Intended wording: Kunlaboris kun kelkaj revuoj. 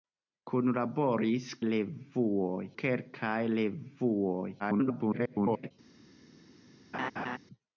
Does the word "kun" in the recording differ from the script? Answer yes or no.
yes